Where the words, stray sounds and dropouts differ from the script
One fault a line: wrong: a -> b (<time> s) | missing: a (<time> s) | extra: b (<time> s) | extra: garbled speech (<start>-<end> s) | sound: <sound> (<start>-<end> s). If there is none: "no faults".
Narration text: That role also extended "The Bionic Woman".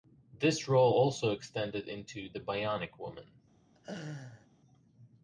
wrong: That -> This (0.3 s)
extra: into (1.9 s)
sound: laugh (3.7-4.5 s)